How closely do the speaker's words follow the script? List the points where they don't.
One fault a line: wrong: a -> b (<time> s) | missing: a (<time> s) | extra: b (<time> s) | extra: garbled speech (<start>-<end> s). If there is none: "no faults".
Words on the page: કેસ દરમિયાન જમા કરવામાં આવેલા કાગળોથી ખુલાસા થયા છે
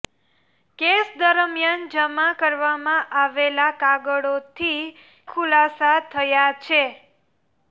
no faults